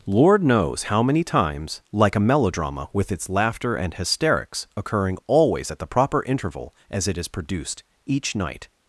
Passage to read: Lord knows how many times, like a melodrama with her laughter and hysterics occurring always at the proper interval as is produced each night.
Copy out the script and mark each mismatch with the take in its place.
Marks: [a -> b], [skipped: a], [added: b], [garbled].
Lord knows how many times, like a melodrama with [her -> its] laughter and hysterics occurring always at the proper interval as [added: it] is produced each night.